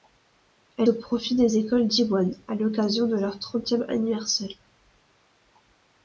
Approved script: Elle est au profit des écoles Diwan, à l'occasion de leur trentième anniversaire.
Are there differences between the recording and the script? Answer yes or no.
yes